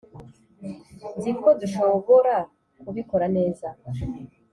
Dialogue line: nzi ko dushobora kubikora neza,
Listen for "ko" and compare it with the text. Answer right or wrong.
right